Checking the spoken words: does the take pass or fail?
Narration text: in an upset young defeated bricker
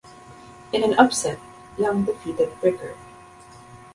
pass